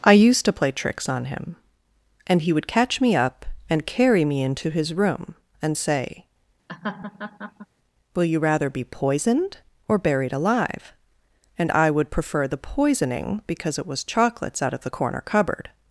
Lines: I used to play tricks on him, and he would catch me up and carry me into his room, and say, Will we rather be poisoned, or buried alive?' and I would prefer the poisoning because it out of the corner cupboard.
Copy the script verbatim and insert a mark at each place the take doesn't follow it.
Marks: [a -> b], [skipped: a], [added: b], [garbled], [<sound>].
I used to play tricks on him, and he would catch me up and carry me into his room, and say, [laugh] Will [we -> you] rather be poisoned, or buried alive?' and I would prefer the poisoning because it [added: was chocolates] out of the corner cupboard.